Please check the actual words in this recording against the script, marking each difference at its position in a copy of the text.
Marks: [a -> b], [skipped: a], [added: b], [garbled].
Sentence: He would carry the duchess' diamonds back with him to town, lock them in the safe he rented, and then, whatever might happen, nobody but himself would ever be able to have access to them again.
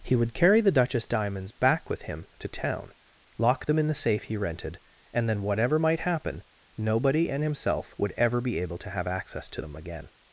He would carry the duchess' diamonds back with him to town, lock them in the safe he rented, and then, whatever might happen, nobody [but -> and] himself would ever be able to have access to them again.